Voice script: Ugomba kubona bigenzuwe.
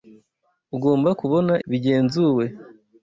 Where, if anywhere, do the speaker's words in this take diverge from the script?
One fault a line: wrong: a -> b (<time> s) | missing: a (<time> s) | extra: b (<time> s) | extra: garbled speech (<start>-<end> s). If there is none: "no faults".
no faults